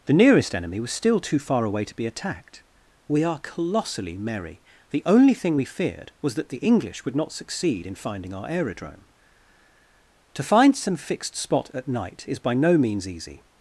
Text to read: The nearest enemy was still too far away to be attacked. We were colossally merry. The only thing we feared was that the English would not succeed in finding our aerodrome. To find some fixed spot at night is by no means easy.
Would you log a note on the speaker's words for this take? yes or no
yes